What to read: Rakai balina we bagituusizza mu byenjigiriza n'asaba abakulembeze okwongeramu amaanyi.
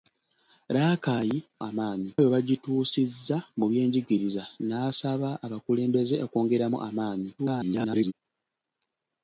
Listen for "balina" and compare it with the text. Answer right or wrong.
wrong